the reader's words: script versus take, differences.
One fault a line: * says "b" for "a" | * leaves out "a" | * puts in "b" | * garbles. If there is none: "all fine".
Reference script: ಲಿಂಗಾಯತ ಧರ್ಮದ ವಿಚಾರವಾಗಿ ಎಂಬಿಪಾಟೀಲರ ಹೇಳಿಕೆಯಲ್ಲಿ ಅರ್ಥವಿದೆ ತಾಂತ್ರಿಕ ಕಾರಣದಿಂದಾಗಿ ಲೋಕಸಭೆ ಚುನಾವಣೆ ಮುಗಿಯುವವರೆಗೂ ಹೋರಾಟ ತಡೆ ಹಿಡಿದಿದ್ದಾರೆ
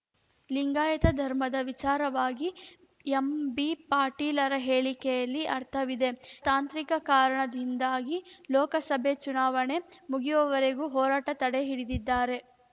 all fine